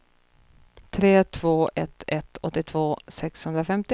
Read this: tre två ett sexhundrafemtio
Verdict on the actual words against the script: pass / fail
fail